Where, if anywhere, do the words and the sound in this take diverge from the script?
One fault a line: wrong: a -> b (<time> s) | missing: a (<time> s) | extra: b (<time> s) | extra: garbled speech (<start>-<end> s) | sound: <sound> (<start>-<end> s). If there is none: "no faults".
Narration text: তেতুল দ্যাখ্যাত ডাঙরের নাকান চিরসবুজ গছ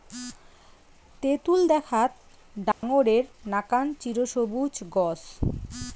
sound: dropout (2.7-2.8 s)